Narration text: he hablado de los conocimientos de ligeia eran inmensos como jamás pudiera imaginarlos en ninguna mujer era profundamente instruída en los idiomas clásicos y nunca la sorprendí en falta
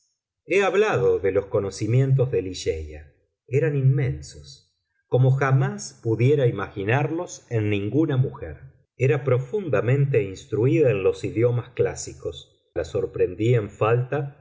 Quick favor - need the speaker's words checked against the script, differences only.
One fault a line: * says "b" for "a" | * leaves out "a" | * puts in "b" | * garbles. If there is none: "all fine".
* leaves out "y nunca"